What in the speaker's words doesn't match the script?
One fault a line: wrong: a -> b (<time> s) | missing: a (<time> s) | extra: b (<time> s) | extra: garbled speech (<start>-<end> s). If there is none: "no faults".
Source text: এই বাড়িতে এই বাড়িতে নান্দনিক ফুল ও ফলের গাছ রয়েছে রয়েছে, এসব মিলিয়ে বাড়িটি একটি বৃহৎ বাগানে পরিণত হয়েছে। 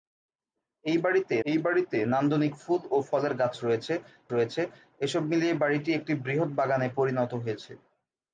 no faults